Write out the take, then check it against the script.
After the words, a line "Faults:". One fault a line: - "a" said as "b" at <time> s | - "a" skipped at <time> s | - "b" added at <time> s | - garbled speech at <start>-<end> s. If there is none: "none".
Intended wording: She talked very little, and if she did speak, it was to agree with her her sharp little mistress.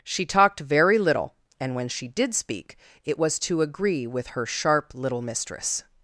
She talked very little, and when she did speak, it was to agree with her sharp little mistress.
Faults:
- "if" said as "when" at 1.8 s
- "her" skipped at 4.5 s